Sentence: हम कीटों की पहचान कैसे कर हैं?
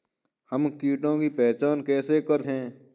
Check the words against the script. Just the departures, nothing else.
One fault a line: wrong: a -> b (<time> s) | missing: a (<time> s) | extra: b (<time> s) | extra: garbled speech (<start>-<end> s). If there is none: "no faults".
no faults